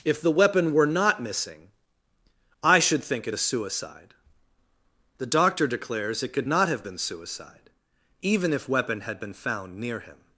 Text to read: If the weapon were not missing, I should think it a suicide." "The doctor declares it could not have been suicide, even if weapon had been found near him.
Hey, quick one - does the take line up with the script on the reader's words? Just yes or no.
yes